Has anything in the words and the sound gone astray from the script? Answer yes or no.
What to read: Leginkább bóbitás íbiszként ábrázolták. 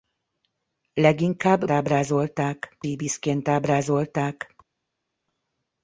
yes